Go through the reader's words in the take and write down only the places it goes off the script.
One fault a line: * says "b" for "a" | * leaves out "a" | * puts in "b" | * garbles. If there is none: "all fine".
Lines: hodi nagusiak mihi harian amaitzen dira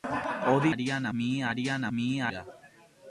* says "harian" for "nagusiak"
* says "mihi" for "amaitzen"